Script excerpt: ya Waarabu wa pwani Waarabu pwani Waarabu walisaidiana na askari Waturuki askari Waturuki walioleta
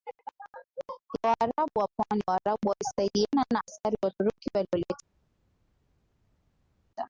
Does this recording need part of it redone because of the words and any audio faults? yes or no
yes